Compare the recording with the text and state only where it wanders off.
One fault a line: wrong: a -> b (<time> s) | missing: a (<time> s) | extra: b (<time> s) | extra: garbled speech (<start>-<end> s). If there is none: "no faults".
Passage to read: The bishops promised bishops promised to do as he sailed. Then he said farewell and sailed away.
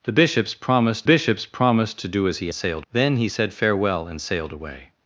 no faults